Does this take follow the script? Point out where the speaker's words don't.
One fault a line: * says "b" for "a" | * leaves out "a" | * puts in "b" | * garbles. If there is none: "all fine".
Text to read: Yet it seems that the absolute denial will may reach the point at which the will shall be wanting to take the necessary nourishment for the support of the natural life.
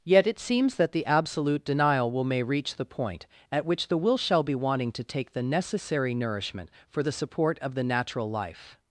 all fine